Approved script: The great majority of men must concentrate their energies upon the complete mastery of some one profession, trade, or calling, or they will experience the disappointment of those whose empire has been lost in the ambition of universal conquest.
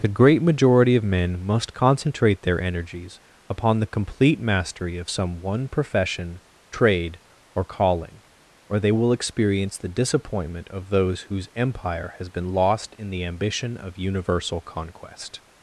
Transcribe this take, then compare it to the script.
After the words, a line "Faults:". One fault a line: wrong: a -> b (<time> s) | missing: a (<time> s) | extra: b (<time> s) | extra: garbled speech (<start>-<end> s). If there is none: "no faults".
The great majority of men must concentrate their energies upon the complete mastery of some one profession, trade, or calling, or they will experience the disappointment of those whose empire has been lost in the ambition of universal conquest.
Faults:
no faults